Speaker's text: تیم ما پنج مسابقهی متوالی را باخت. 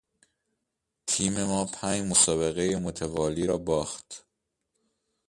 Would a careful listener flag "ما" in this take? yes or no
no